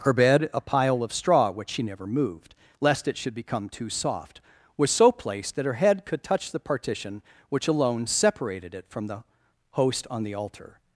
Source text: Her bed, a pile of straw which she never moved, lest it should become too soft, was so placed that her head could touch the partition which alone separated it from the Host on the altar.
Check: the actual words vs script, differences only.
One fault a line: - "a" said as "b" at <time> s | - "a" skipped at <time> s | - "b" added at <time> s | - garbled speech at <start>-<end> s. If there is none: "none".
none